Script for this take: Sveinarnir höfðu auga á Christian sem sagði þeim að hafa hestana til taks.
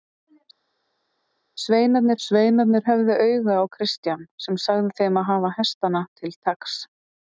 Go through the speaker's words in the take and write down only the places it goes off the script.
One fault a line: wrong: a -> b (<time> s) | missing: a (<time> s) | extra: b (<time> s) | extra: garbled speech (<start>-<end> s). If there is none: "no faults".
extra: sveinarnir (2.3 s)